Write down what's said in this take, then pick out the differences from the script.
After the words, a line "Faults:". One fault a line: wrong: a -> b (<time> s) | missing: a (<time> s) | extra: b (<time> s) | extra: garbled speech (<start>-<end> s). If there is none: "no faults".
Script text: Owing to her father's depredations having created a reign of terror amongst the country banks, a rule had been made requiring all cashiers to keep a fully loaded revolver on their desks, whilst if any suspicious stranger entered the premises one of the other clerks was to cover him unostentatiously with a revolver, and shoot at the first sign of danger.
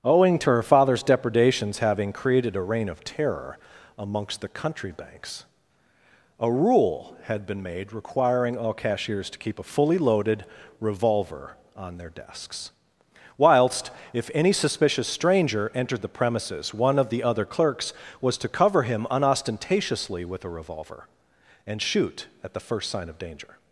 Owing to her father's depredations having created a reign of terror amongst the country banks, a rule had been made requiring all cashiers to keep a fully loaded revolver on their desks, whilst if any suspicious stranger entered the premises one of the other clerks was to cover him unostentatiously with a revolver, and shoot at the first sign of danger.
Faults:
no faults